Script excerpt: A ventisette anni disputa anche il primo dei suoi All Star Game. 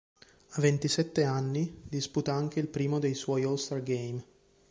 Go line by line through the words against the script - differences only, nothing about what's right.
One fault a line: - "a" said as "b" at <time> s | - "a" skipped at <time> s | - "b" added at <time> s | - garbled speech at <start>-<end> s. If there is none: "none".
none